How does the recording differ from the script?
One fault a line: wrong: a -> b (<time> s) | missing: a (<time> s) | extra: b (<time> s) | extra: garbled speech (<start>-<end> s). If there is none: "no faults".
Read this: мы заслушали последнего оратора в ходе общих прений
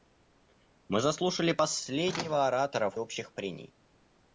missing: ходе (2.9 s)